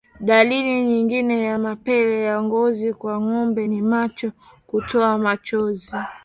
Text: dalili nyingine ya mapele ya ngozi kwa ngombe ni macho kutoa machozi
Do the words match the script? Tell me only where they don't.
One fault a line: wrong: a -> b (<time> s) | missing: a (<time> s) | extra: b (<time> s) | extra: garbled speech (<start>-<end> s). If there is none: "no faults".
no faults